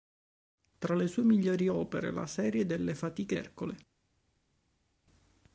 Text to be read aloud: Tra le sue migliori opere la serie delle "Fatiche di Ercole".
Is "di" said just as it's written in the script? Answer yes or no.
no